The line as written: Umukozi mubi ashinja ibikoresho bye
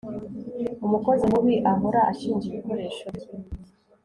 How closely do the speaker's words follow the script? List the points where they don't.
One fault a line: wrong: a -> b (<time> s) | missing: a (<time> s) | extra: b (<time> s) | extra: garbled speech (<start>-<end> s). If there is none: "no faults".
extra: ahora (1.7 s)